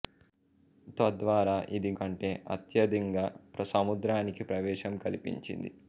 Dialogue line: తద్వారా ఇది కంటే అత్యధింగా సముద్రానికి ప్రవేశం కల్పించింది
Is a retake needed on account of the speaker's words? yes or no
no